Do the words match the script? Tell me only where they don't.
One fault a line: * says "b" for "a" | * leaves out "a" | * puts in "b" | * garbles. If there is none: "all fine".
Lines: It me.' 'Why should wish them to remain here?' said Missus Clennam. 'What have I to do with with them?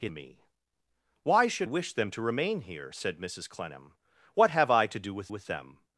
all fine